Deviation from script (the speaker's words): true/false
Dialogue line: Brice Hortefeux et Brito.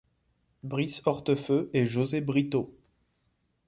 true